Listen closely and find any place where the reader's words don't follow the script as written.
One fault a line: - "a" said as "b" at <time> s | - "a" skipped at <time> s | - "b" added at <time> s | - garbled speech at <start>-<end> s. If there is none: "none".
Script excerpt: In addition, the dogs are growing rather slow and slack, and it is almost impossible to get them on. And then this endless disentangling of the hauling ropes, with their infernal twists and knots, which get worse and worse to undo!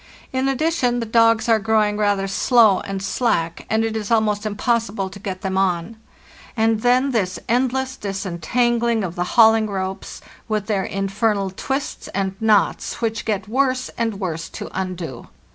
none